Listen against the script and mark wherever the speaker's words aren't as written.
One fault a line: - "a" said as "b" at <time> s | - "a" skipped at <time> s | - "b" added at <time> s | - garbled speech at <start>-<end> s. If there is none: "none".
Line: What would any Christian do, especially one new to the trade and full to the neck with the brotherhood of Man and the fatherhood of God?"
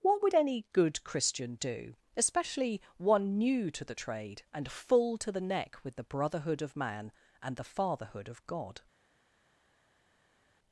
- "good" added at 0.7 s